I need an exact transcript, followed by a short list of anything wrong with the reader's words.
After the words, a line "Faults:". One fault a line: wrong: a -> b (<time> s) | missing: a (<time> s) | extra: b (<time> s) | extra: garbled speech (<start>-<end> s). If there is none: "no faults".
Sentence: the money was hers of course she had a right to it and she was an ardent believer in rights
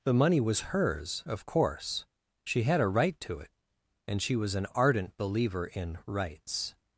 the money was hers of course she had a right to it and she was an ardent believer in rights
Faults:
no faults